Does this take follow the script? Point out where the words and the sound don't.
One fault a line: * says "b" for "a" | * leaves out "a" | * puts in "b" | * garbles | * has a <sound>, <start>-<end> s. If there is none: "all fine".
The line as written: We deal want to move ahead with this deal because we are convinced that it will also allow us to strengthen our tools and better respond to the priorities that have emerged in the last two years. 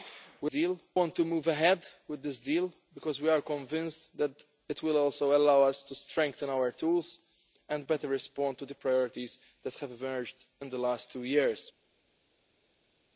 all fine